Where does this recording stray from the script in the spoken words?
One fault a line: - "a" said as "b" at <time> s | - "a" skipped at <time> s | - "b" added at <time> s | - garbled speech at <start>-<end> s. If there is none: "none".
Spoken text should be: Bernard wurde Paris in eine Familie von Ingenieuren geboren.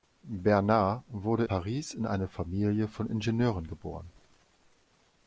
none